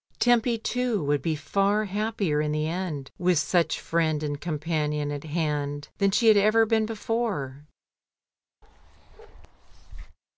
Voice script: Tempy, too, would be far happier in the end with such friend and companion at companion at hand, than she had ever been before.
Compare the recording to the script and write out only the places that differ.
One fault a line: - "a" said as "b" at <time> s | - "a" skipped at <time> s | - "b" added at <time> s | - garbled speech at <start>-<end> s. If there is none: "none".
- "companion at" skipped at 5.3 s